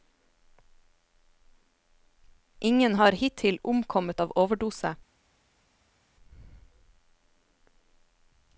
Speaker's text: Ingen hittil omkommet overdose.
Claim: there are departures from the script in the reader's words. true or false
true